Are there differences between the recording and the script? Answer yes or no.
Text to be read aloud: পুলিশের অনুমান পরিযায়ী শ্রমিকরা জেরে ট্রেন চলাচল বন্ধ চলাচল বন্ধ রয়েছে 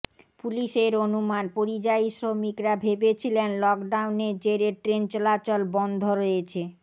yes